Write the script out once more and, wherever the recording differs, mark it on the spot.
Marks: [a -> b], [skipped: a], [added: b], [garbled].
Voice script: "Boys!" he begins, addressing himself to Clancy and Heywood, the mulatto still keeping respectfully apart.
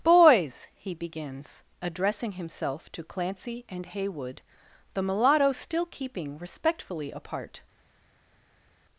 "Boys!" he begins, addressing himself to Clancy and Heywood, the mulatto still keeping respectfully apart.